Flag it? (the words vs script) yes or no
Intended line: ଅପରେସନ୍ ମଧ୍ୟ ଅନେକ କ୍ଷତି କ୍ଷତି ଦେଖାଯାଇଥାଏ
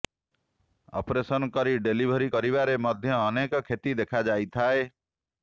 yes